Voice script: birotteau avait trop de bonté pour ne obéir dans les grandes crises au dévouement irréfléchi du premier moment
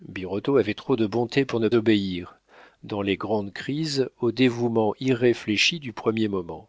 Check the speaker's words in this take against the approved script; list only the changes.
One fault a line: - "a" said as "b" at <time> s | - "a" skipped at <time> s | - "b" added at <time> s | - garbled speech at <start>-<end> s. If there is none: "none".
none